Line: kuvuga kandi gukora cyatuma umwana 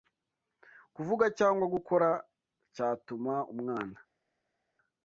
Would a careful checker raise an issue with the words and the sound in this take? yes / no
yes